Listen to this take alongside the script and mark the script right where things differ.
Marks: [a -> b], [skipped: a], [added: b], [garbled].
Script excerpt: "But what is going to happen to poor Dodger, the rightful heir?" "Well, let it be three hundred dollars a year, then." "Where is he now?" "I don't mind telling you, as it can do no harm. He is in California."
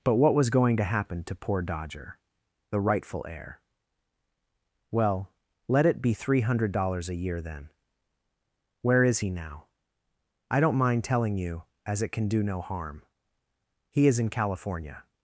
"But what [is -> was] going to happen to poor Dodger, the rightful heir?" "Well, let it be three hundred dollars a year, then." "Where is he now?" "I don't mind telling you, as it can do no harm. He is in California."